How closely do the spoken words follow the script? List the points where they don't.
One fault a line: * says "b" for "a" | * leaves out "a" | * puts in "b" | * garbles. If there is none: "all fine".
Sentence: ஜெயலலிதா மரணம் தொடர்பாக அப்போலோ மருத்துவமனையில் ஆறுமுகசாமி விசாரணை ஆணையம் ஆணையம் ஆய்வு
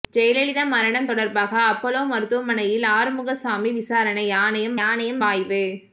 all fine